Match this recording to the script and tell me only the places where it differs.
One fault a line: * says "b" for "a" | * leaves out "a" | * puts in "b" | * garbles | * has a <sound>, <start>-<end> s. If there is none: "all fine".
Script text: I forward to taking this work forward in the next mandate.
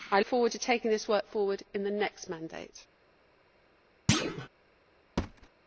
* has a thud, 4.1-4.5 s
* has a thud, 5.2-5.5 s